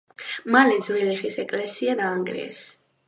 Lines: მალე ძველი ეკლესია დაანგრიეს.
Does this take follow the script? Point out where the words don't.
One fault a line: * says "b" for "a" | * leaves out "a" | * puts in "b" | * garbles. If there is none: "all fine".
* puts in "ხის"